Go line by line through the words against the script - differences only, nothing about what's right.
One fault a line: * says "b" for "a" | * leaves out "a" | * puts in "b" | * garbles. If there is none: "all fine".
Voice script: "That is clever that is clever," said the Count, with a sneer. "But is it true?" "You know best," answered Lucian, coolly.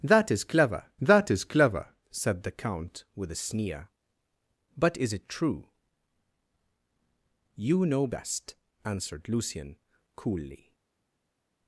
all fine